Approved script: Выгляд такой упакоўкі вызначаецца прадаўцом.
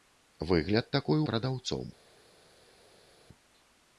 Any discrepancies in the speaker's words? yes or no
yes